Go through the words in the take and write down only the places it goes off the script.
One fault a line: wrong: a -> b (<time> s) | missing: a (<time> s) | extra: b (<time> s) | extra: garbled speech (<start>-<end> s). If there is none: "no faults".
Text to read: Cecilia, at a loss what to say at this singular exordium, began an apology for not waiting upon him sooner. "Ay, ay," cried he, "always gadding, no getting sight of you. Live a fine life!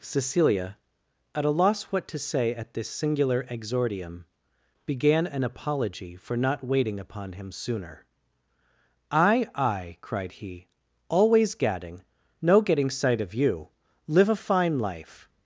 no faults